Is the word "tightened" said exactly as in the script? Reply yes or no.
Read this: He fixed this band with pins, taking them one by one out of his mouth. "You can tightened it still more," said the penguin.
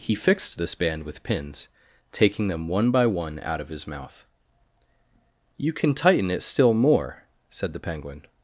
no